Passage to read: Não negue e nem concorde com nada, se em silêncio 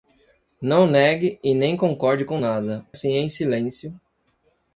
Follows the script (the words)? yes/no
yes